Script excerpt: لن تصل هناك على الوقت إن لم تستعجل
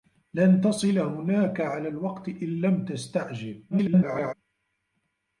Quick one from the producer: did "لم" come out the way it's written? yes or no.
yes